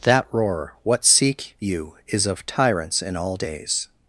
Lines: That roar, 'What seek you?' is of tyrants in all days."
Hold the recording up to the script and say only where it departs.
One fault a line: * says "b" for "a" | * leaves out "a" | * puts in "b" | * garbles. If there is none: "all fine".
all fine